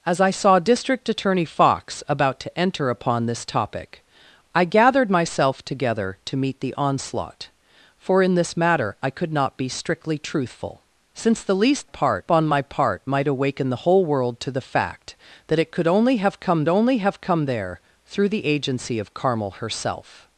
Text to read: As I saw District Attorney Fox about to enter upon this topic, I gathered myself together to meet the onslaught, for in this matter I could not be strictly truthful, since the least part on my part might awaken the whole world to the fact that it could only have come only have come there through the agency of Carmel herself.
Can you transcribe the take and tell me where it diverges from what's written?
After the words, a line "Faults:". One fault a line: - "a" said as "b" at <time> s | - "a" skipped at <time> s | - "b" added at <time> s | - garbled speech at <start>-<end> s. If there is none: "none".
As I saw District Attorney Fox about to enter upon this topic, I gathered myself together to meet the onslaught, for in this matter I could not be strictly truthful, since the least part on my part might awaken the whole world to the fact that it could only have come only have come there through the agency of Carmel herself.
Faults:
none